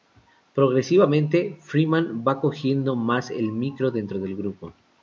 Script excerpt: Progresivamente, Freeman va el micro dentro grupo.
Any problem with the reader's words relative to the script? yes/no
yes